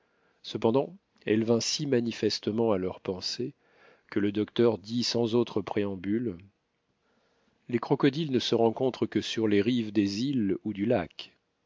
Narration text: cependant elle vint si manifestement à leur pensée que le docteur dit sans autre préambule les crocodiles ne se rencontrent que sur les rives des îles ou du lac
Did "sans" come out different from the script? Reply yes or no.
no